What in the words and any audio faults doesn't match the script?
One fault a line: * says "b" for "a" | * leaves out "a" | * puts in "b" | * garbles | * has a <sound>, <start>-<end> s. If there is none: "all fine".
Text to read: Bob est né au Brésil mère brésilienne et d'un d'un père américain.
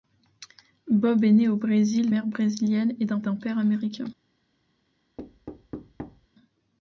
* has a thud, 5.2-6.3 s